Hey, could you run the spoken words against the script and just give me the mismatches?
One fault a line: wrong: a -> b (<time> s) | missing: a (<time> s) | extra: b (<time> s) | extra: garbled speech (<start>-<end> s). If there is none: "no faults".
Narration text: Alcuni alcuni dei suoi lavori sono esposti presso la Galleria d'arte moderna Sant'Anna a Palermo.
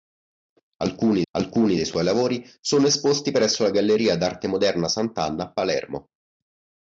no faults